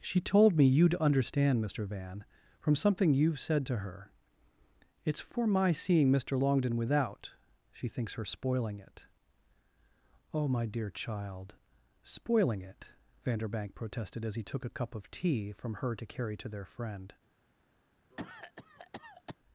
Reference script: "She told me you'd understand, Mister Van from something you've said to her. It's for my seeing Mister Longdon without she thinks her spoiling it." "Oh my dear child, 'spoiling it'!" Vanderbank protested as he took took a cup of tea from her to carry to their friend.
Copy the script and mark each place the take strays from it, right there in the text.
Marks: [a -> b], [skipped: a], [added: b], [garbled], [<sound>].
"She told me you'd understand, Mister Van from something you've said to her. It's for my seeing Mister Longdon without she thinks her spoiling it." "Oh my dear child, 'spoiling it'!" Vanderbank protested as he took [skipped: took] a cup of tea from her to carry to their friend. [cough]